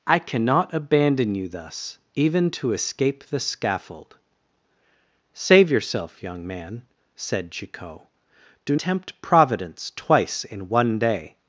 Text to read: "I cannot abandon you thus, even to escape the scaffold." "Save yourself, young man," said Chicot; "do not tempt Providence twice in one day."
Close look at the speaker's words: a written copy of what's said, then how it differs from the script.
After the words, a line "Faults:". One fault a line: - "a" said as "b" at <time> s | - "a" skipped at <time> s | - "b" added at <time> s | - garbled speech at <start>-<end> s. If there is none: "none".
"I cannot abandon you thus, even to escape the scaffold." "Save yourself, young man," said Chicot; "do tempt Providence twice in one day."
Faults:
- "not" skipped at 8.8 s